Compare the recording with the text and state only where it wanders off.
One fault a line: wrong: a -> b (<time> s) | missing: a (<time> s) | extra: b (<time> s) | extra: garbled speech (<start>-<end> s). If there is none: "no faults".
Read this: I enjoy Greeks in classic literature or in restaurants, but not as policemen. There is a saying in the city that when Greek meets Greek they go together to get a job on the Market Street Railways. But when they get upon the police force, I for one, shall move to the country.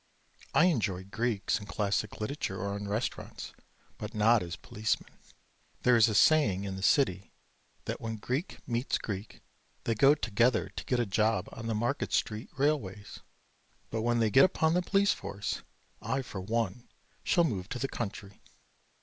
no faults